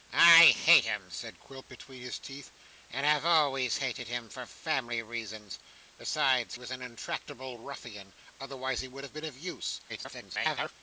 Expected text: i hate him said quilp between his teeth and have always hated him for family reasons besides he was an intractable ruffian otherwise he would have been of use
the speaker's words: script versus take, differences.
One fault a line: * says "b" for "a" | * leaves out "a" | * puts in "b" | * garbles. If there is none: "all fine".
* leaves out "he"
* garbles